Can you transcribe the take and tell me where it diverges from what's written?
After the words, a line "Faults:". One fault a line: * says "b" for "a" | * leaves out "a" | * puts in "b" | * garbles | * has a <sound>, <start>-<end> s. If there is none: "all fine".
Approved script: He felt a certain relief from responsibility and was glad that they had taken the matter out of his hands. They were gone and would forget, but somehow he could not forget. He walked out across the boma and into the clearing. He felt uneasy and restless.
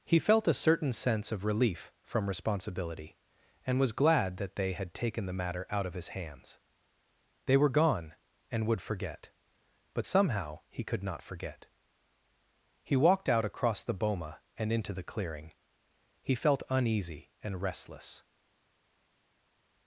He felt a certain sense of relief from responsibility and was glad that they had taken the matter out of his hands. They were gone and would forget, but somehow he could not forget. He walked out across the boma and into the clearing. He felt uneasy and restless.
Faults:
* puts in "sense of"